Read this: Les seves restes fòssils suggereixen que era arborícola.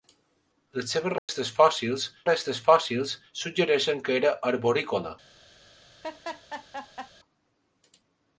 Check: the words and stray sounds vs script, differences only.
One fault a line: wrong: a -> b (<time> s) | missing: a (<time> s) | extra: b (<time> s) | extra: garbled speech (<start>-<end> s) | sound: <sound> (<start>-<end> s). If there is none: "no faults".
sound: dropout (1.2-1.3 s)
extra: restes fòssils (2.2 s)
sound: laugh (6.0-7.1 s)